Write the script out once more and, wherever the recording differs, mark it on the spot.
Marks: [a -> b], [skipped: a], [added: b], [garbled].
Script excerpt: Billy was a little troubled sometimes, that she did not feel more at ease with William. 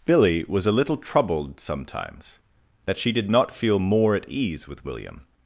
Billy was a little troubled sometimes, that she did not feel more at ease with William.